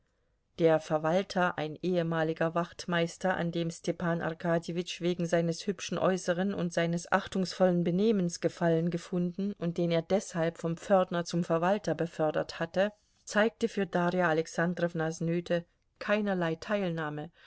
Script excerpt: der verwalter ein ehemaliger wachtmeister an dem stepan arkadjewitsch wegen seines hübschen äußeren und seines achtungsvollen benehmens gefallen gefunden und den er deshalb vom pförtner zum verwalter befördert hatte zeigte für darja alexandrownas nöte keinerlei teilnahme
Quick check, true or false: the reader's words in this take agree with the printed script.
true